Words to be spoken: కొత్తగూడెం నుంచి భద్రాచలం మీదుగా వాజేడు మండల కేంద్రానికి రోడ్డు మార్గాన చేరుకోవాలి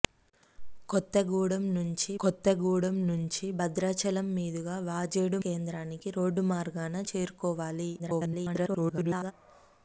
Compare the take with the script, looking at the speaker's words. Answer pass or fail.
fail